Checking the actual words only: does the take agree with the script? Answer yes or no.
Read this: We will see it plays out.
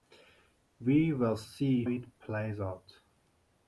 yes